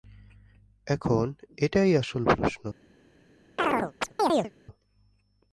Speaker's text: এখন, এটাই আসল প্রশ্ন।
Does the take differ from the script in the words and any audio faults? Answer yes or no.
yes